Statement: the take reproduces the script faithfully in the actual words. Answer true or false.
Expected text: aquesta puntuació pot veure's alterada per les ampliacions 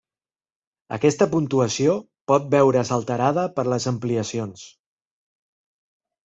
true